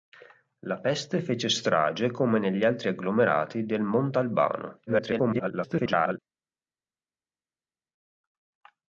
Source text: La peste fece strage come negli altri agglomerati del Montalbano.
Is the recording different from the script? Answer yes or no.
yes